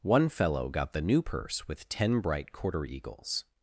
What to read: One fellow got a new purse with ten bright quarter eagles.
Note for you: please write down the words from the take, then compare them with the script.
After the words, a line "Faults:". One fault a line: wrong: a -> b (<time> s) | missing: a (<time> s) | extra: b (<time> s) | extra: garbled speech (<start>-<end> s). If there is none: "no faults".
One fellow got the new purse with ten bright quarter eagles.
Faults:
wrong: a -> the (0.9 s)